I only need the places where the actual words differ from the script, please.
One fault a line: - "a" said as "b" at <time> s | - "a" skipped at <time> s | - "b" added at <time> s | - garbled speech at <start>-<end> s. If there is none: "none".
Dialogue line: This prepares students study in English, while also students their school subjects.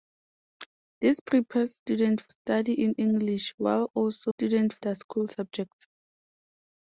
none